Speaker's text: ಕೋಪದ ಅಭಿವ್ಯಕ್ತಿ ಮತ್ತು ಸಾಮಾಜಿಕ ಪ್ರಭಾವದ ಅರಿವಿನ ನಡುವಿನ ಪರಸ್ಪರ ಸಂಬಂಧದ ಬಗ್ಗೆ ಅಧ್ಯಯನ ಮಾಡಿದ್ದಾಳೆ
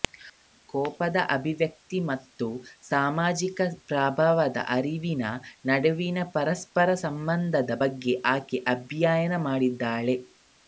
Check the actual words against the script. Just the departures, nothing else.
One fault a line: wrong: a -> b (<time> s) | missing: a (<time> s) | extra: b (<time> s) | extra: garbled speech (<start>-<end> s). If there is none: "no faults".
extra: ಆಕೆ (8.4 s)